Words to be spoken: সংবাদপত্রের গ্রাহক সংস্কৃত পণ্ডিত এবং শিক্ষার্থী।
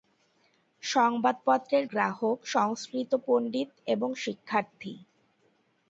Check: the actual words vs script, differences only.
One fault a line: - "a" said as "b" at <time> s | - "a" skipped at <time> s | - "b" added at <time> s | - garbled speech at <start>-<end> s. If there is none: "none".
none